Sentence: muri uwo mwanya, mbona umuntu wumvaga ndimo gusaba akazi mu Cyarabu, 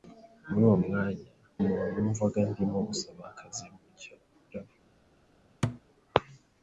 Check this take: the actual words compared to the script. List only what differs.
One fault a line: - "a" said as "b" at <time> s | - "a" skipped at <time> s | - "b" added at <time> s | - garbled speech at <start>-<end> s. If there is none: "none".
- "mbona" skipped at 1.3 s